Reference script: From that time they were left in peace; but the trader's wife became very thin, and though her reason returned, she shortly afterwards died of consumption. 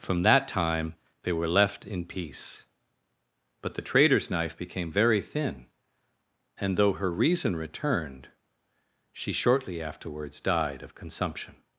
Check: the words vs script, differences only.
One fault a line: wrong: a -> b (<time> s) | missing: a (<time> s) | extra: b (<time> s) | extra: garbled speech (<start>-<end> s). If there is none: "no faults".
wrong: wife -> knife (4.3 s)